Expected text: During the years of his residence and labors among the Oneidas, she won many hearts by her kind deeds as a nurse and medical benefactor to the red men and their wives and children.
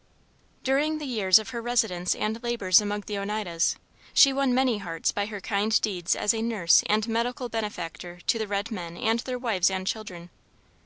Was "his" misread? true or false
true